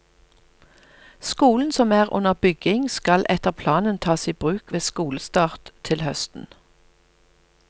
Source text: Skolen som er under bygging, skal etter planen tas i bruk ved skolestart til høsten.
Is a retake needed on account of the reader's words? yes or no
no